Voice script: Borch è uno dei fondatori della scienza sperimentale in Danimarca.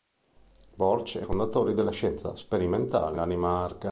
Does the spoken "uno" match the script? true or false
false